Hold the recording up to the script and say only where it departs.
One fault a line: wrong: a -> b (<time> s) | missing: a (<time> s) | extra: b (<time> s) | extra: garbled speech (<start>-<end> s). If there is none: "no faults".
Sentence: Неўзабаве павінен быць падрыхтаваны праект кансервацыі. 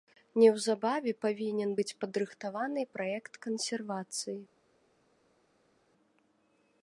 no faults